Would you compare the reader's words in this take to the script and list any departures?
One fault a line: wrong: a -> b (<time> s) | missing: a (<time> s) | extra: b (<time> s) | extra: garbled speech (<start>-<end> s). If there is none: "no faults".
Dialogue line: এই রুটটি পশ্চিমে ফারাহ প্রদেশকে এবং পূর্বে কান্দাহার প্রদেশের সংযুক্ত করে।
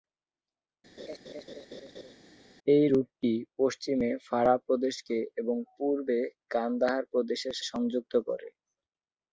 no faults